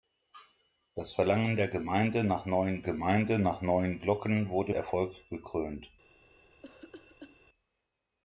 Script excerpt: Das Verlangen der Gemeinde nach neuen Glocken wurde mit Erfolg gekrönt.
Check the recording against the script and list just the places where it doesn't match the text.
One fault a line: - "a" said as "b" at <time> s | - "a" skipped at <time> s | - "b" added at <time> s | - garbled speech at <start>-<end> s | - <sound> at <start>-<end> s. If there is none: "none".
- "Gemeinde nach neuen" added at 2.8 s
- "mit" skipped at 4.8 s
- cough at 6.6-7.4 s